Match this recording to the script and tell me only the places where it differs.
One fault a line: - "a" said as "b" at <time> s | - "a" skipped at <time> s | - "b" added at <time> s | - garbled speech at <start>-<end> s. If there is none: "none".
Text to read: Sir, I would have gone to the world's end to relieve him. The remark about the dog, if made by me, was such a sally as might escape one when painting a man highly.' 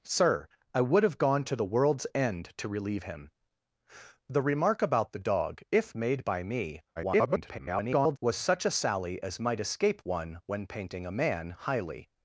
- garbled speech at 7.0-8.2 s